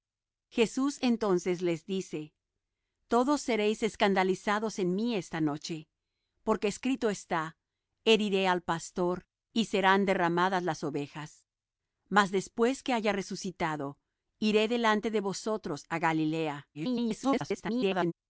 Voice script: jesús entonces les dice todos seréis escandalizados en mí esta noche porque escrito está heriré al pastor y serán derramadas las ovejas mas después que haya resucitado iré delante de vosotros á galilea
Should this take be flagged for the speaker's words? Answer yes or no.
yes